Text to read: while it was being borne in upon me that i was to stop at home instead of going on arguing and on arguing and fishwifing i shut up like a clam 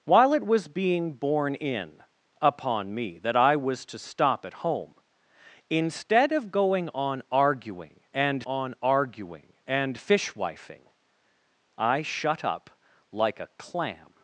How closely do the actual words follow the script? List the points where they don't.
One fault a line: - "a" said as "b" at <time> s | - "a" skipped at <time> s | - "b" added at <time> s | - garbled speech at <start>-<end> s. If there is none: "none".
none